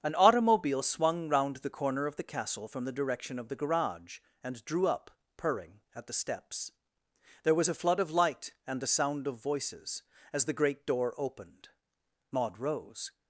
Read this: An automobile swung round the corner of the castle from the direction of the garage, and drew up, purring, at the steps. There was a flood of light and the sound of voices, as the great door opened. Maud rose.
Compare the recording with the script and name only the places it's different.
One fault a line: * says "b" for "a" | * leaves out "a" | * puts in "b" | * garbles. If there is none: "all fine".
all fine